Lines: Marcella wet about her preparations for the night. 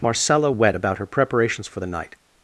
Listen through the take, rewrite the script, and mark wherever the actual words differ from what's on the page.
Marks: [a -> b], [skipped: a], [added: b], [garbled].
Marcella wet about her preparations for the night.